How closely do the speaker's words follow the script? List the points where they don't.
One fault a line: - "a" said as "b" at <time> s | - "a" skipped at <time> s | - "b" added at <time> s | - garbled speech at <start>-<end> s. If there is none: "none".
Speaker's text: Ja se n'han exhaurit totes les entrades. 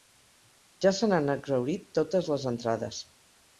none